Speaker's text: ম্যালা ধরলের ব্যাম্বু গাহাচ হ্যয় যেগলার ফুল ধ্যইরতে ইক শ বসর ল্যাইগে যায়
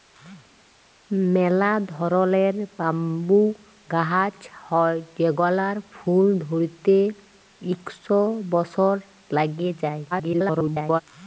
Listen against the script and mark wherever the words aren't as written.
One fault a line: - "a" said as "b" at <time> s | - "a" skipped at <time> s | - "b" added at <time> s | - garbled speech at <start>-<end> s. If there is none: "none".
- garbled speech at 10.1-11.0 s